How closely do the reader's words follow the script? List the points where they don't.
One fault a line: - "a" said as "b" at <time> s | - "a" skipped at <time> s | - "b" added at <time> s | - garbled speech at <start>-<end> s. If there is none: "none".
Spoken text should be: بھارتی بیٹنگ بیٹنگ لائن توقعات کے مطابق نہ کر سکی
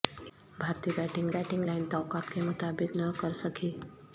none